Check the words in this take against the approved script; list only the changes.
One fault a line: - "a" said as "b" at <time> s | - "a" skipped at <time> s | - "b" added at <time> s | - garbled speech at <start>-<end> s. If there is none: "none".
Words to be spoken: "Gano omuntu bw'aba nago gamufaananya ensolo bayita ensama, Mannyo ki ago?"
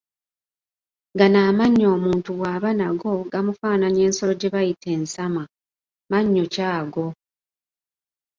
- "amannyo" added at 1.5 s
- "gye" added at 4.4 s